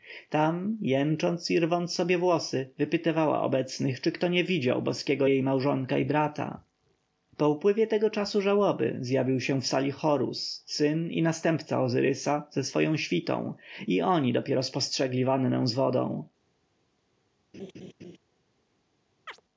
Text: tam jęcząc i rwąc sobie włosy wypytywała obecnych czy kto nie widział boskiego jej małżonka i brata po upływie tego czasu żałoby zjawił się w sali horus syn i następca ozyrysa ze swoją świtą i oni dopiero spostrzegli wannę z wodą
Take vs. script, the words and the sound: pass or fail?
fail